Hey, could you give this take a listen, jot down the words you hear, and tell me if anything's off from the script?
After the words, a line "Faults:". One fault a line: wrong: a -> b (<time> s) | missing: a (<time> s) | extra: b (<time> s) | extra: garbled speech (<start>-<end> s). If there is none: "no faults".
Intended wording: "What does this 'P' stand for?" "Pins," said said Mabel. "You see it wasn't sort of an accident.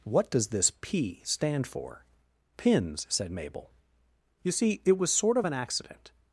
"What does this 'P' stand for?" "Pins," said Mabel. "You see it was sort of an accident.
Faults:
missing: said (3.3 s)
wrong: wasn't -> was (5.0 s)